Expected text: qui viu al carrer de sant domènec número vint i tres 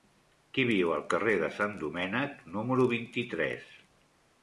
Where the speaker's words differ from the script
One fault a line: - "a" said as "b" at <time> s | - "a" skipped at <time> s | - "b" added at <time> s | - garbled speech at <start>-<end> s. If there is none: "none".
none